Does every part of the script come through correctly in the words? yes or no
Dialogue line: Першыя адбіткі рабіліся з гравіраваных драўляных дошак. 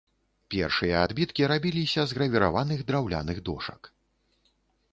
yes